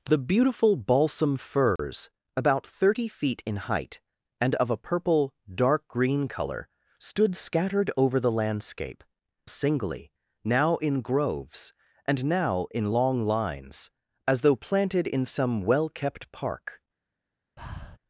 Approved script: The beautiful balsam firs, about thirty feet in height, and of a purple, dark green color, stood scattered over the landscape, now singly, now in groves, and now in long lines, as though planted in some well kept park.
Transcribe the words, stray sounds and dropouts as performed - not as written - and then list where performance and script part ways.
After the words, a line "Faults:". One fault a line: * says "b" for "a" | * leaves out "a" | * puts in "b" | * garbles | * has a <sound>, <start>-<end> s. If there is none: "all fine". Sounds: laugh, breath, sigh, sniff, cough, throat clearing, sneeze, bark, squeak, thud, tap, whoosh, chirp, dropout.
The beautiful balsam firs, about thirty feet in height, and of a purple, dark green color, stood scattered over the landscape, singly, now in groves, and now in long lines, as though planted in some well kept park.
Faults:
* has a dropout, 1.8-1.8 s
* leaves out "now"
* has a breath, 17.6-18.0 s